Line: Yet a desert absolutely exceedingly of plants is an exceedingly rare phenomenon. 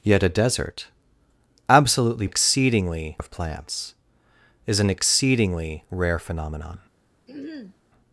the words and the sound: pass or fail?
fail